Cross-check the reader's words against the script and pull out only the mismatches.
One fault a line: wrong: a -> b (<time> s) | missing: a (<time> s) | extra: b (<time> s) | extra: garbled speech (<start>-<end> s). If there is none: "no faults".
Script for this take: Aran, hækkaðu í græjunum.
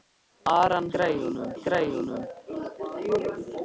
wrong: hækkaðu -> græjunum (0.9 s)